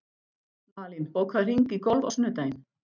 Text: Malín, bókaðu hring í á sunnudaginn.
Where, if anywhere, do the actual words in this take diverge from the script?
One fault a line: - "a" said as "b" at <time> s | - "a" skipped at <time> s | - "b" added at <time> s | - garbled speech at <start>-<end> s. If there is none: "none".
- "golf" added at 1.9 s